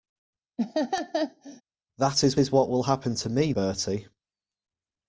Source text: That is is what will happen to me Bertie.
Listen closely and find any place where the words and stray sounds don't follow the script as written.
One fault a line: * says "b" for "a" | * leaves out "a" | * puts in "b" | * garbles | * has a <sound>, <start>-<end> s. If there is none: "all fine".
* has a laugh, 0.6-1.6 s